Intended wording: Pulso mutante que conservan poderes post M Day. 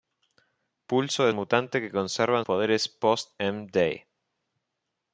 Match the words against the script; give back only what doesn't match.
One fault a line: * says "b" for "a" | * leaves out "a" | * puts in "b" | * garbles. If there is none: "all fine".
all fine